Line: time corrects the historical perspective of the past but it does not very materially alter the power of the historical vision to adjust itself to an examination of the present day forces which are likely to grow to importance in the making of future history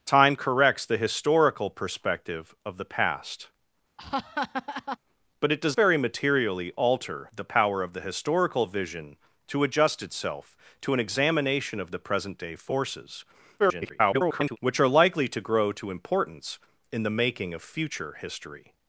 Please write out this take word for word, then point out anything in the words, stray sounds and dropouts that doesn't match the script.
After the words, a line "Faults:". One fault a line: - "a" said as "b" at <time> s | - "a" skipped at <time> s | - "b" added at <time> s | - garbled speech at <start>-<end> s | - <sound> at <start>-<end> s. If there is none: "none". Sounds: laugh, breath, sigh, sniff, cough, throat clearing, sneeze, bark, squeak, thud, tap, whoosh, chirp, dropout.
time corrects the historical perspective of the past but it does very materially alter the power of the historical vision to adjust itself to an examination of the present day forces [garbled] which are likely to grow to importance in the making of future history
Faults:
- laugh at 4.0-5.0 s
- "not" skipped at 5.7 s
- garbled speech at 13.6-14.6 s